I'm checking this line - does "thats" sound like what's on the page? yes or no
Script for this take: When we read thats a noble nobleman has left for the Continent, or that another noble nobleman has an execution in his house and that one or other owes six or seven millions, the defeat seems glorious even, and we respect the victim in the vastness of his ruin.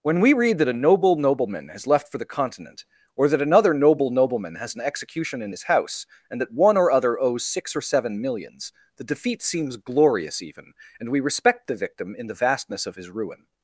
no